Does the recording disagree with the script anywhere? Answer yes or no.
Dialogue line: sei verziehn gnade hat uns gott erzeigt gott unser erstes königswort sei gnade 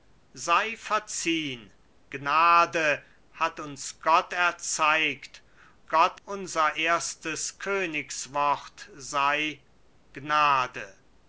no